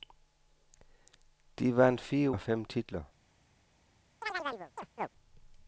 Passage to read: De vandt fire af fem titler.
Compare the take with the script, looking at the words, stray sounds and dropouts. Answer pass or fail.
fail